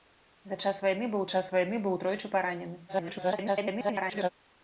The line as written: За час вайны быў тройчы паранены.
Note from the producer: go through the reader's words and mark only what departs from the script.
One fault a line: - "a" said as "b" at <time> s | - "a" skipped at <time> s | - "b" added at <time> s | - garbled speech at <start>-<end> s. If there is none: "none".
- "час вайны быў" added at 1.3 s
- garbled speech at 2.9-4.3 s